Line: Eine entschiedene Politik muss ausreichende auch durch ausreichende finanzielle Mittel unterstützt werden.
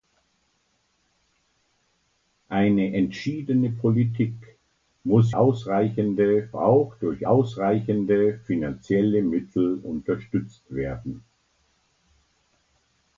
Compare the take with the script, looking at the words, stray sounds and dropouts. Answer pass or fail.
pass